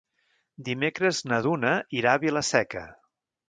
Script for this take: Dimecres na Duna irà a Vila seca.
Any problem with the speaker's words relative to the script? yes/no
no